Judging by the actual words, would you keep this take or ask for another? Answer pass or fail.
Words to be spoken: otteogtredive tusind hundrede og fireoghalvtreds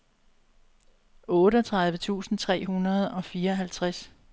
fail